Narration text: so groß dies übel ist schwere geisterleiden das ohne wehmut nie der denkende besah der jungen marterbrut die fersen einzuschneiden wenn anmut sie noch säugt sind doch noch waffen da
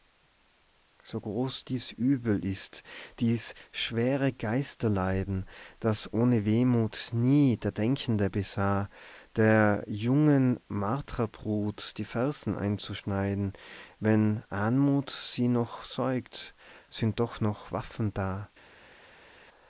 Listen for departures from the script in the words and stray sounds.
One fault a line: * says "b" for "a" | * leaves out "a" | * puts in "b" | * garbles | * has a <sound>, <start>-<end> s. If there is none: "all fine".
* puts in "dies"